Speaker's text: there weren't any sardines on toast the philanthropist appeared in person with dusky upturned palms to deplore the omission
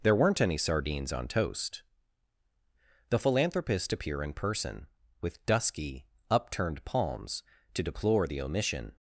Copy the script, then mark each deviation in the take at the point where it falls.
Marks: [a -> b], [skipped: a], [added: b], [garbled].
there weren't any sardines on toast the philanthropist [appeared -> appear] in person with dusky upturned palms to deplore the omission